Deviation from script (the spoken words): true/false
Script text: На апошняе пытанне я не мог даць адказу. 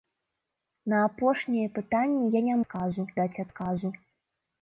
true